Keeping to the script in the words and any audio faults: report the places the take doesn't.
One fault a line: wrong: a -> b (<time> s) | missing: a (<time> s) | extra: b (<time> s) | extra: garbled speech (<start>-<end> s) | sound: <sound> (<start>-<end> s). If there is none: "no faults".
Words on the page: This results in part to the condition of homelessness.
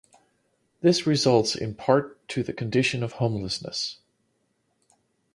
no faults